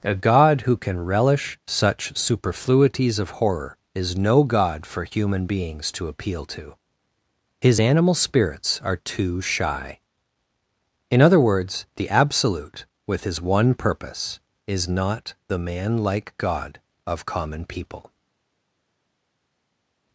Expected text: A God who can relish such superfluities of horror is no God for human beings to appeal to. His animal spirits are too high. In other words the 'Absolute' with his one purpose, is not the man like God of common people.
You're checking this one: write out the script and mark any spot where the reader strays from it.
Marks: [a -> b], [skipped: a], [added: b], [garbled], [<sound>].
A God who can relish such superfluities of horror is no God for human beings to appeal to. His animal spirits are too [high. -> shy] In other words the 'Absolute' with his one purpose, is not the man like God of common people.